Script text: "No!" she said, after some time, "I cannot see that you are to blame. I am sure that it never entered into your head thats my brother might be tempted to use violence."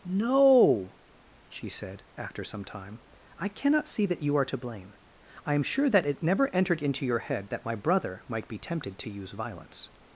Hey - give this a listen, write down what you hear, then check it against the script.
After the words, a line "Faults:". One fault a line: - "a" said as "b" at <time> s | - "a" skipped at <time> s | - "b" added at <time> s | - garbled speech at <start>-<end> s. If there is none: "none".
"No!" she said, after some time, "I cannot see that you are to blame. I am sure that it never entered into your head that my brother might be tempted to use violence."
Faults:
- "thats" said as "that" at 7.5 s